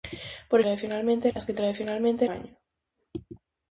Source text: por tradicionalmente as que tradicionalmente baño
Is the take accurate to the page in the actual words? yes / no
yes